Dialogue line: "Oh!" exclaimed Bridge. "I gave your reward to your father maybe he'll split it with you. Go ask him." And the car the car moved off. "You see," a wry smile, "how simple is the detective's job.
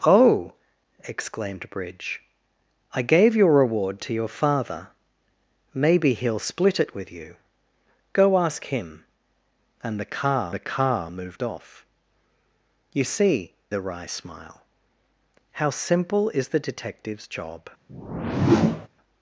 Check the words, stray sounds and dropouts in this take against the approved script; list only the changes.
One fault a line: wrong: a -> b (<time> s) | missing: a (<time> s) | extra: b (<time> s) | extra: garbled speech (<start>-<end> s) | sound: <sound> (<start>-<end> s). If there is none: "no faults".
sound: whoosh (17.9-18.9 s)